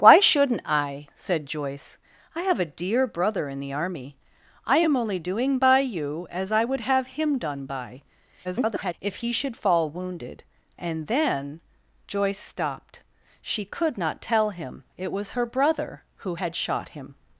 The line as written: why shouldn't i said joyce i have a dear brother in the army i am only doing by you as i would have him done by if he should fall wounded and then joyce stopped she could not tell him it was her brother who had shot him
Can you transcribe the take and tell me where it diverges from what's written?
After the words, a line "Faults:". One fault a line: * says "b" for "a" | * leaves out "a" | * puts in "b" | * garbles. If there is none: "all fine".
why shouldn't i said joyce i have a dear brother in the army i am only doing by you as i would have him done by [garbled] if he should fall wounded and then joyce stopped she could not tell him it was her brother who had shot him
Faults:
* garbles